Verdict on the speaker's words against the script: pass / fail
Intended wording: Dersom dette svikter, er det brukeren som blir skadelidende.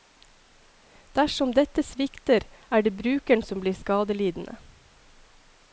pass